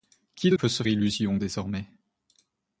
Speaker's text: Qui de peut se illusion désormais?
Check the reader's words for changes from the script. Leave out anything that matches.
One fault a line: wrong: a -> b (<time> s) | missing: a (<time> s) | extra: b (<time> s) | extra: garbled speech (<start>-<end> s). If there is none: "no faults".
no faults